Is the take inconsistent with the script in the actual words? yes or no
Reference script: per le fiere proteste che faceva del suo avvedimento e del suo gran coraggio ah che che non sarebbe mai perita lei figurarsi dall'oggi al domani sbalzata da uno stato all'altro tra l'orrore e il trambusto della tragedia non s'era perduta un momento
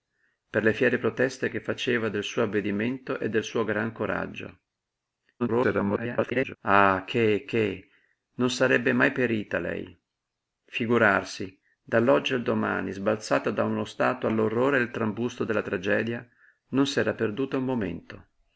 yes